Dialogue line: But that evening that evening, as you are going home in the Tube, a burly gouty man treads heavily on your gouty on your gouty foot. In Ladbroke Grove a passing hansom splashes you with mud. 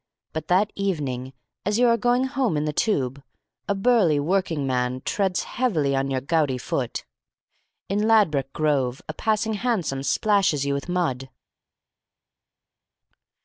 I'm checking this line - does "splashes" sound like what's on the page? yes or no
yes